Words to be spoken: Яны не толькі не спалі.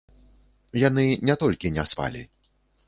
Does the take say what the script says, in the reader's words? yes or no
yes